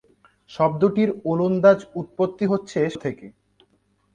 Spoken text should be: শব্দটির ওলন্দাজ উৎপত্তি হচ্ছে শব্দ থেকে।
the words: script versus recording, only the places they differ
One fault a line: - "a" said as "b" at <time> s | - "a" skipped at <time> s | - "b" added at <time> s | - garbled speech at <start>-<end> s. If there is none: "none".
- "শব্দ" skipped at 2.8 s